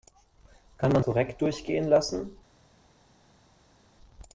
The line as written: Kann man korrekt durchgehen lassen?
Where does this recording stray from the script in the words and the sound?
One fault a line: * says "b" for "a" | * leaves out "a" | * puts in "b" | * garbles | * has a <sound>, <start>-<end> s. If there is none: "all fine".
all fine